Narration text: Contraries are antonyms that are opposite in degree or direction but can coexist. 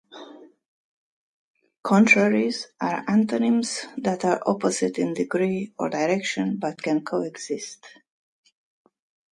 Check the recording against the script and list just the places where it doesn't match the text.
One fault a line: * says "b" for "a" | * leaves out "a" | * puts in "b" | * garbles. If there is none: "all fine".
all fine